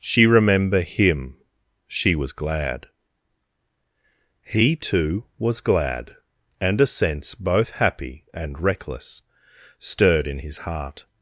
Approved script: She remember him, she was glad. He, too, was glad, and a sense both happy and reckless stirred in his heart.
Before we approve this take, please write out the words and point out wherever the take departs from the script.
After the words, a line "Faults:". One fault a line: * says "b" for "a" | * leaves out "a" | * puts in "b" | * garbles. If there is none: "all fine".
She remember him, she was glad. He, too, was glad, and a sense both happy and reckless stirred in his heart.
Faults:
all fine